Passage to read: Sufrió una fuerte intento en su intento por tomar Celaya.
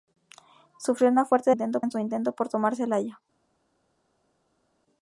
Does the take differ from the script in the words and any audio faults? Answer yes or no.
no